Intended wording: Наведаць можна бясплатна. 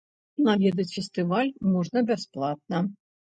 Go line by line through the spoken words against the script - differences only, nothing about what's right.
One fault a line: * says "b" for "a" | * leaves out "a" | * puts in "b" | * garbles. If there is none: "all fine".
* puts in "фестываль"